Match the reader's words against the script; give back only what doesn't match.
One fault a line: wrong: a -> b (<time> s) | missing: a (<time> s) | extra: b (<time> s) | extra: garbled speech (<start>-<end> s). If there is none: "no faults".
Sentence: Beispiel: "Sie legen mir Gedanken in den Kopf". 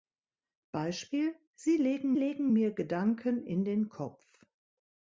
extra: legen (2.1 s)